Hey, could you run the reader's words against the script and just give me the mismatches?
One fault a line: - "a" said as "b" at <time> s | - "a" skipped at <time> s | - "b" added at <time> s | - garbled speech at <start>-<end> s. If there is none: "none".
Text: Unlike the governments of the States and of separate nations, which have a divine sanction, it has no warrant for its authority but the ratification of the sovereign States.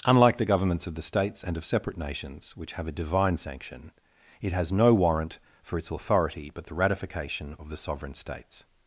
none